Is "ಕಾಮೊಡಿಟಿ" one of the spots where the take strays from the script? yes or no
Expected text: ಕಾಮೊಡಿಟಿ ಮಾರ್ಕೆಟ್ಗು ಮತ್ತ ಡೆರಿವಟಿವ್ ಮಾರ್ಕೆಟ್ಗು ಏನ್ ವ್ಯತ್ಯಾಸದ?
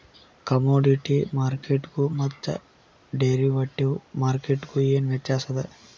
no